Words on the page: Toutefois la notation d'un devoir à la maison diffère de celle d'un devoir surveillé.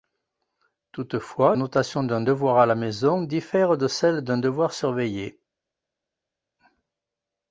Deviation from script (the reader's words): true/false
true